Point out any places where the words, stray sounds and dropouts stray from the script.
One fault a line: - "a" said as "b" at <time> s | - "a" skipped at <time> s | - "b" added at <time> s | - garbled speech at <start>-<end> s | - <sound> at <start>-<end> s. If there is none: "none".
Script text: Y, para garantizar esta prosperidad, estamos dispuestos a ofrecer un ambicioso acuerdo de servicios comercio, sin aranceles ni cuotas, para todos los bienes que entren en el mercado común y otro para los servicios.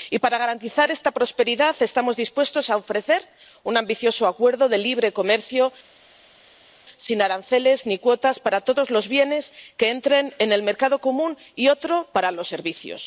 - "servicios" said as "libre" at 4.8 s